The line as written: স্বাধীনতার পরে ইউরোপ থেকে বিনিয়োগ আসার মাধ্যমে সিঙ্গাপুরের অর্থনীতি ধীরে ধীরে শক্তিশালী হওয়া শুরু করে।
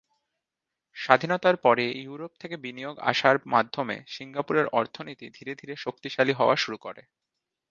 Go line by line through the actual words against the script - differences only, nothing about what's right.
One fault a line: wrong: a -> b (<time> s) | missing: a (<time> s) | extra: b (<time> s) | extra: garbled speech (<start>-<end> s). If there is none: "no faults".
no faults